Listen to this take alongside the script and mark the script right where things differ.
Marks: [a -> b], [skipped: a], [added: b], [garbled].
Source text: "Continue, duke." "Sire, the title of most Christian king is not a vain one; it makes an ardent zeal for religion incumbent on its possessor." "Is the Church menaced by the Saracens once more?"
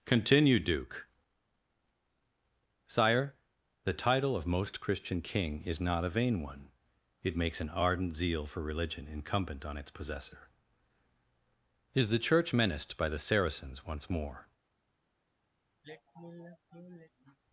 "Continue, duke." "Sire, the title of most Christian king is not a vain one; it makes an ardent zeal for religion incumbent on its possessor." "Is the Church menaced by the Saracens once more?"